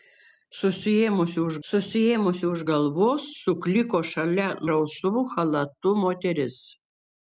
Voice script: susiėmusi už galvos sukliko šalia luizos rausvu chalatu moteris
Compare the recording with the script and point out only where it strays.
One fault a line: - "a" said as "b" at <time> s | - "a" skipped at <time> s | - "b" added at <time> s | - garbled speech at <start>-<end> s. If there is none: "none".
- "susiėmusi už" added at 1.7 s
- "luizos" skipped at 4.5 s